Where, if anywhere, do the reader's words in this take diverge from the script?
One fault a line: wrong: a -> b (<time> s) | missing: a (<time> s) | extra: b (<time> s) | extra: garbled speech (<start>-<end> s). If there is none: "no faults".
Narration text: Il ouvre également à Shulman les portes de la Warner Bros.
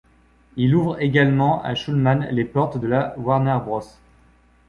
no faults